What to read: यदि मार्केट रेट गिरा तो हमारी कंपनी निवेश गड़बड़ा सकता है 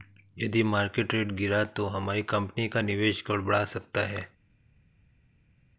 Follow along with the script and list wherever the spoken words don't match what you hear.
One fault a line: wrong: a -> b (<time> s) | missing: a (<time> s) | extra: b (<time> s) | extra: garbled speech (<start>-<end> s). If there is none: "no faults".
extra: का (2.7 s)